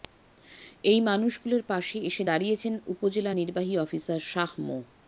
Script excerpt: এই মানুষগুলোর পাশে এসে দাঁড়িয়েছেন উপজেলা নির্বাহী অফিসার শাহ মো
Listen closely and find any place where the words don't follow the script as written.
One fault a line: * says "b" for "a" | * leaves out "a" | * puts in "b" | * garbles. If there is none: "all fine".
all fine